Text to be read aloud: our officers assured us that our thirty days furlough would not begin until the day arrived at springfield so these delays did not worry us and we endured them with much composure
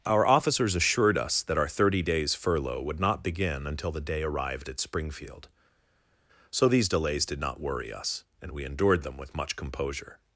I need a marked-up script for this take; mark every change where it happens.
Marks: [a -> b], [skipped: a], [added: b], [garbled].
our officers assured us that our thirty days furlough would not begin until the day arrived at springfield so these delays did not worry us and we endured them with much composure